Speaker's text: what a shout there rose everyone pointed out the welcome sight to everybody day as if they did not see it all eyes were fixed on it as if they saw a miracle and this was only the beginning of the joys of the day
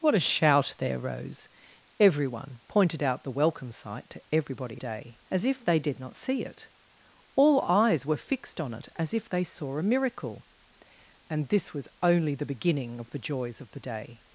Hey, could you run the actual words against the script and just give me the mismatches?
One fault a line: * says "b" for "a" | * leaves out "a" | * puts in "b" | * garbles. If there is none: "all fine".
all fine